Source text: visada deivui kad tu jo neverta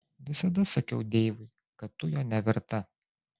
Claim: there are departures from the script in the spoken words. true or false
true